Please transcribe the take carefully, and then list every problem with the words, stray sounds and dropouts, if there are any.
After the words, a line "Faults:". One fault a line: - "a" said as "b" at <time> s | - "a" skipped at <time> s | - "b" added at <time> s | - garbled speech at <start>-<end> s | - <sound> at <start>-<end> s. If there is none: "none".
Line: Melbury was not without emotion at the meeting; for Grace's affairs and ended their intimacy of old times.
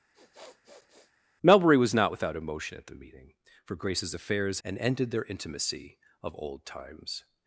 Melbury was not without emotion at the meeting; for Grace's affairs and ended their intimacy of old times.
Faults:
- sniff at 0.1-1.1 s